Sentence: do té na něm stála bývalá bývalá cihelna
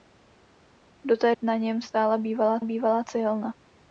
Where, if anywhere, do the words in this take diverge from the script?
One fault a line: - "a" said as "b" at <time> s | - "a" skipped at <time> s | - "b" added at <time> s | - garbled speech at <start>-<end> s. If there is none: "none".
none